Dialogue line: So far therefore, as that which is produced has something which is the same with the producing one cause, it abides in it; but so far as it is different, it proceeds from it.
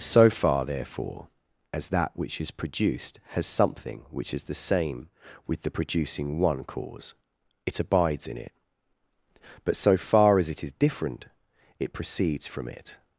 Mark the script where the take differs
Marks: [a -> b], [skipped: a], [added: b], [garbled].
So far therefore, as that which is produced has something which is the same with the producing one cause, it abides in it; but so far as it is different, it proceeds from it.